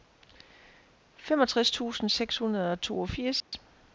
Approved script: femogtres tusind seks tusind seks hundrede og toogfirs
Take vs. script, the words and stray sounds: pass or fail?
fail